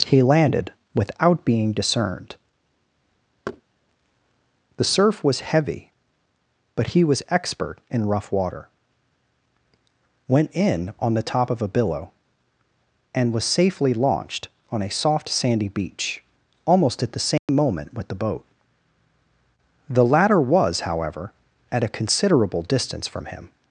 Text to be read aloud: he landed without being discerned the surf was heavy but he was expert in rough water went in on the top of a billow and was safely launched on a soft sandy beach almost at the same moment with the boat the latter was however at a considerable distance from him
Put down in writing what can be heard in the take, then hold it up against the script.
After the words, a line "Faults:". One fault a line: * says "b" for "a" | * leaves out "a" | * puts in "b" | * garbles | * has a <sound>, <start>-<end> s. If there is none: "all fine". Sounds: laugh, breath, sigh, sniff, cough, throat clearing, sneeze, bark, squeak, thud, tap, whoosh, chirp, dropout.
he landed without being discerned the surf was heavy but he was expert in rough water went in on the top of a billow and was safely launched on a soft sandy beach almost at the same moment with the boat the latter was however at a considerable distance from him
Faults:
* has a thud, 3.5-3.6 s
* has a dropout, 17.4-17.5 s